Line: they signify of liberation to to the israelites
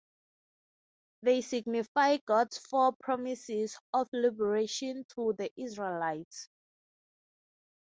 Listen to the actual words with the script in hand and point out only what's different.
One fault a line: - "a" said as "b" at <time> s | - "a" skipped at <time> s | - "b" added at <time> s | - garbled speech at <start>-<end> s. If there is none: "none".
- "god's four promises" added at 2.2 s
- "to" skipped at 5.3 s